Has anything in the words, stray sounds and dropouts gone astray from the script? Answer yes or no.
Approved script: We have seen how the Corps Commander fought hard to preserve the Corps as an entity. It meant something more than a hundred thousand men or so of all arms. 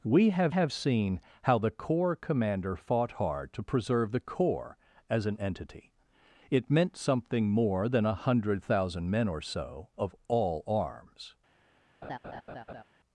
yes